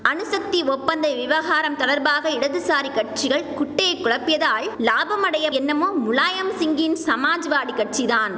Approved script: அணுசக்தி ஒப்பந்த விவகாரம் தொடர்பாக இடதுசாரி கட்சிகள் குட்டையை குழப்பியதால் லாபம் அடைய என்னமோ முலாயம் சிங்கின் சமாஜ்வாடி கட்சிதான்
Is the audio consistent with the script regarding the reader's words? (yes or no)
yes